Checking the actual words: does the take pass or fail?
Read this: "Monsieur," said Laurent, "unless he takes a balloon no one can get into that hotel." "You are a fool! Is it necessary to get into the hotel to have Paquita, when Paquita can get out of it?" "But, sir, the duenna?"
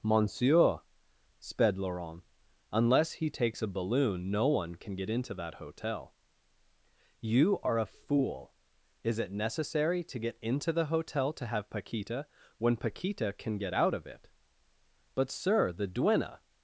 fail